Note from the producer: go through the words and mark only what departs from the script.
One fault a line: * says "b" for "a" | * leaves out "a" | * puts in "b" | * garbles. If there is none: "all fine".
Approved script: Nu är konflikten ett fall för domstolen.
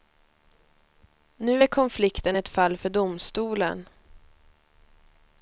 all fine